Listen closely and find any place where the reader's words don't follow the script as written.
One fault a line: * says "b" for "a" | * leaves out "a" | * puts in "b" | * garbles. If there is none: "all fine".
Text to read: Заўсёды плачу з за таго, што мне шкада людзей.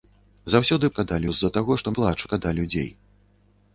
* says "шкада" for "плачу"
* says "плачу" for "мне"